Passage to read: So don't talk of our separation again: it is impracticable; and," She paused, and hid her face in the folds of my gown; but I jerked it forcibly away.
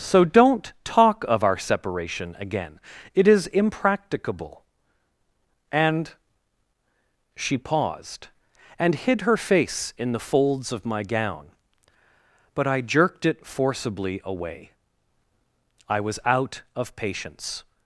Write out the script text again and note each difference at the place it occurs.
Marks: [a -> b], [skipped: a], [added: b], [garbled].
So don't talk of our separation again: it is impracticable; and," She paused, and hid her face in the folds of my gown; but I jerked it forcibly away. [added: I was out of patience]